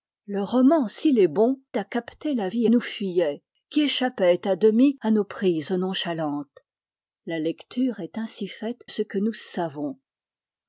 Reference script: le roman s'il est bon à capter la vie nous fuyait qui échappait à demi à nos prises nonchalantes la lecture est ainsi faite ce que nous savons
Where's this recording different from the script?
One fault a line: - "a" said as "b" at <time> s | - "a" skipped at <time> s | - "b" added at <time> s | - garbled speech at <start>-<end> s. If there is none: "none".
none